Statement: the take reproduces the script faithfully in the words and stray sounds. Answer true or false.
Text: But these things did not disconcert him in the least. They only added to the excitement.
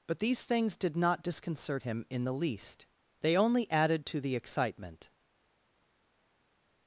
true